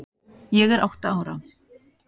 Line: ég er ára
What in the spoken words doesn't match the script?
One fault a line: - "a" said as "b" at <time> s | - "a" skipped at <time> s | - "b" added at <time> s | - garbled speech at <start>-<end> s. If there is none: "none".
- "átta" added at 0.8 s